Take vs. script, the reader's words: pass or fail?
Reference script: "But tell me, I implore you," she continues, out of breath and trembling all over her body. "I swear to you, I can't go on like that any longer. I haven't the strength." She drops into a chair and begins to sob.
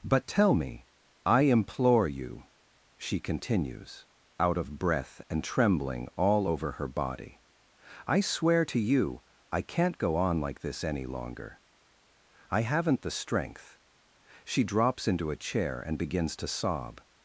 fail